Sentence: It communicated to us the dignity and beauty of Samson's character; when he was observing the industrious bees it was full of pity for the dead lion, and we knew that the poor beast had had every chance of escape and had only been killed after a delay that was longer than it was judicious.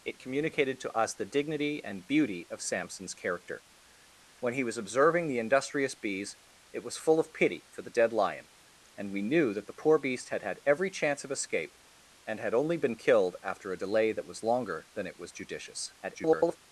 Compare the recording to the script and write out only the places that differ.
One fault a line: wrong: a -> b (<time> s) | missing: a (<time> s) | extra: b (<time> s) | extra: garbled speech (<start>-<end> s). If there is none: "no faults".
extra: garbled speech (16.0-16.6 s)